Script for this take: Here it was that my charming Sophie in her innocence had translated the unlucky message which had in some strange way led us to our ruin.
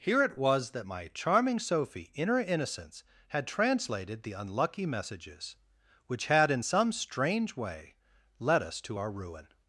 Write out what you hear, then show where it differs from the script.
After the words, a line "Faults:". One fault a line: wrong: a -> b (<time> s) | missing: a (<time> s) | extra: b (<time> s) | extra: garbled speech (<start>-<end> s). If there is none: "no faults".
Here it was that my charming Sophie in her innocence had translated the unlucky messages which had in some strange way led us to our ruin.
Faults:
wrong: message -> messages (4.8 s)